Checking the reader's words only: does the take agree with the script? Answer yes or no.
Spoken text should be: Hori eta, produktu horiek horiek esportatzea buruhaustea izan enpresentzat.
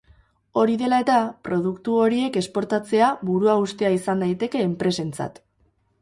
no